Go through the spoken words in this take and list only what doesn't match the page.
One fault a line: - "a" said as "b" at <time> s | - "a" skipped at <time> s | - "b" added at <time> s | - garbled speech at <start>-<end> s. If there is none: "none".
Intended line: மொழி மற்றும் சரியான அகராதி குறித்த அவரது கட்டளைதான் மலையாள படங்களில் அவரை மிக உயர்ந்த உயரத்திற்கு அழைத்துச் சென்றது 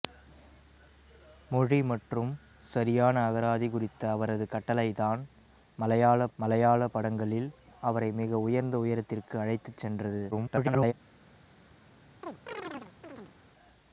- "மலையாள" added at 6.4 s
- garbled speech at 10.3-10.9 s